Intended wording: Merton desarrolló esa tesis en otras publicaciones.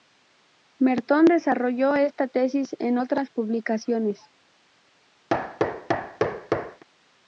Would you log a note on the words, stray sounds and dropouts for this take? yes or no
yes